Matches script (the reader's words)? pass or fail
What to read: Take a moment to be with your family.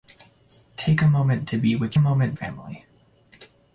fail